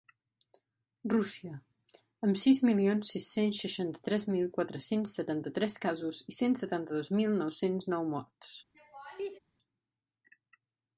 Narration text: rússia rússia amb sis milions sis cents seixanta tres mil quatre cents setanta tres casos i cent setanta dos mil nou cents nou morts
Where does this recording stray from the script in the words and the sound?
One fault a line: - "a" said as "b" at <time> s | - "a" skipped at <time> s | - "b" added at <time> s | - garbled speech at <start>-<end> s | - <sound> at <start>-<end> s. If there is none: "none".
- "rússia" skipped at 1.6 s
- laugh at 8.7-9.4 s